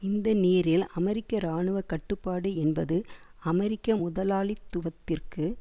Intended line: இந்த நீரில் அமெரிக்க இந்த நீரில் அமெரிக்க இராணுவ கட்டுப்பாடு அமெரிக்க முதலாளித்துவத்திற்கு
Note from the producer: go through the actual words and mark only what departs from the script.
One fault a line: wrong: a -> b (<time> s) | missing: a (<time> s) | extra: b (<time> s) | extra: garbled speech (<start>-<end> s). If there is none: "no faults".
missing: இந்த நீரில் அமெரிக்க (1.4 s)
extra: என்பது (2.6 s)